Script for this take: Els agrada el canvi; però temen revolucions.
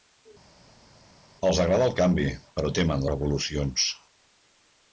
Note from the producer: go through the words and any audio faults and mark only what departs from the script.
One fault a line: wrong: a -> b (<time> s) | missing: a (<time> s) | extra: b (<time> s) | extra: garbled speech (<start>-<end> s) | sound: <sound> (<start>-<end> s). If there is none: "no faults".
no faults